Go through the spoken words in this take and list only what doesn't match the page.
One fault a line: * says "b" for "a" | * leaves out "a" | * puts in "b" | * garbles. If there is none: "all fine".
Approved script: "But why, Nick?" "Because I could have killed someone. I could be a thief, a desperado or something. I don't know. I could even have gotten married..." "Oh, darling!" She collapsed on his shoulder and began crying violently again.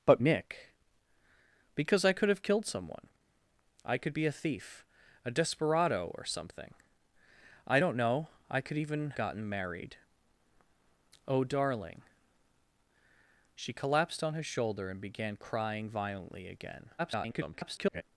* leaves out "why"
* leaves out "have"
* garbles